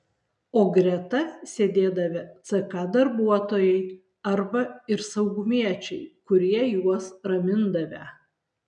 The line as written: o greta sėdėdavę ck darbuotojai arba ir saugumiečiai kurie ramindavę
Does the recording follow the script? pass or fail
fail